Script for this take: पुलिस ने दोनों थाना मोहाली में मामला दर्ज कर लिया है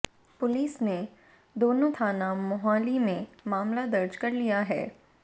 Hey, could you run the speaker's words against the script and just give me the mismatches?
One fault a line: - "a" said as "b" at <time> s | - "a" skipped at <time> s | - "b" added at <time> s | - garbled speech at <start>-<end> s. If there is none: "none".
none